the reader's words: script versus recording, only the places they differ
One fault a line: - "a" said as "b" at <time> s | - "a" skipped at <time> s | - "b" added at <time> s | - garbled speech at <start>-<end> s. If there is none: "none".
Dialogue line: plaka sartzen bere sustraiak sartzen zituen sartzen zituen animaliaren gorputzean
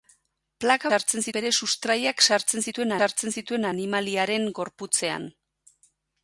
none